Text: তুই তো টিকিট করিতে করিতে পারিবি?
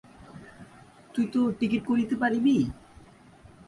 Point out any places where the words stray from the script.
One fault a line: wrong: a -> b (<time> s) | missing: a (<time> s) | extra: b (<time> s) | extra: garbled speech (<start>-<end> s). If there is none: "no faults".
missing: করিতে (2.1 s)